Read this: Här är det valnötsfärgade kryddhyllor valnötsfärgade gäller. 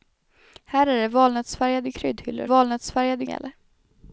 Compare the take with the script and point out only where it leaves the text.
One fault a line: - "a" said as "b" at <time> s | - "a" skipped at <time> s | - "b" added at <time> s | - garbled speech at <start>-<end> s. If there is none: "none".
none